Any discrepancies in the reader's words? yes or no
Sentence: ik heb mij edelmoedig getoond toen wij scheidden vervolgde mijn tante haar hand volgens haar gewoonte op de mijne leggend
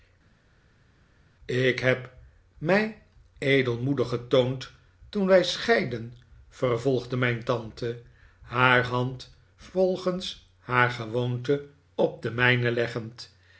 no